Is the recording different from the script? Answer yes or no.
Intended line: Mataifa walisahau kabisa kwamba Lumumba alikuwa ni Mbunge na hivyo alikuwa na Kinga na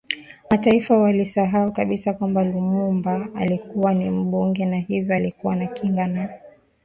no